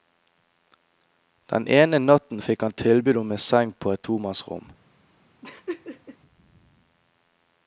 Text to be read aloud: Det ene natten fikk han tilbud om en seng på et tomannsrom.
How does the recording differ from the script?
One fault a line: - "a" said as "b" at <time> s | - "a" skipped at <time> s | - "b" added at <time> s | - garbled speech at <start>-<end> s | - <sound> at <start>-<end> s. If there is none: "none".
- "Det" said as "Den" at 1.5 s
- laugh at 5.4-6.2 s